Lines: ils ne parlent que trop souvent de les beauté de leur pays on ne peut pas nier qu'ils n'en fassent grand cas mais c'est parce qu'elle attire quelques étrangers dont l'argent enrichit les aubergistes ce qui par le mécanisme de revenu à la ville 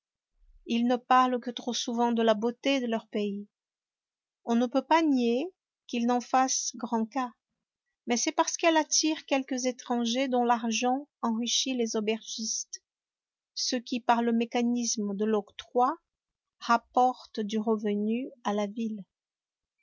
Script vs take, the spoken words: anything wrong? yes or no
yes